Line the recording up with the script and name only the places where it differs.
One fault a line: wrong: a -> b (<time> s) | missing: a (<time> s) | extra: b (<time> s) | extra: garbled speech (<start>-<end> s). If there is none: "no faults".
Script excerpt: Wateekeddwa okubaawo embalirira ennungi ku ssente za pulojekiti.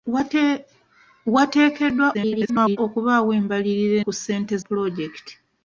extra: garbled speech (2.1-2.8 s)
missing: ennungi (4.0 s)
missing: za (4.5 s)